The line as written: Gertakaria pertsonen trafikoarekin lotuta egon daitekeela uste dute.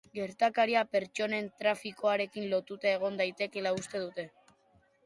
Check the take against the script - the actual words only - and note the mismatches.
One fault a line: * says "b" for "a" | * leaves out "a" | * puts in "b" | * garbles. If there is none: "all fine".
all fine